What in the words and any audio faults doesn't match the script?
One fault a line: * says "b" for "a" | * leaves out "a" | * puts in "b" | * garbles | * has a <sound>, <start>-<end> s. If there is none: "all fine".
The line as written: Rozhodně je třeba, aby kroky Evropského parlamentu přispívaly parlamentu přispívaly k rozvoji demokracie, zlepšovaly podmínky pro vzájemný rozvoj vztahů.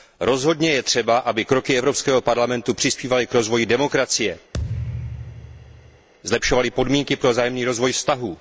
* leaves out "parlamentu přispívaly"
* has a thud, 4.5-6.1 s